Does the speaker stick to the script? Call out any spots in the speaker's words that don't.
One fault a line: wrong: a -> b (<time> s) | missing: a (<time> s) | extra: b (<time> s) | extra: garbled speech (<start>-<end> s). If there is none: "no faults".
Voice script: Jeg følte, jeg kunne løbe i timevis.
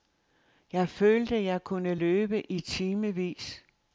no faults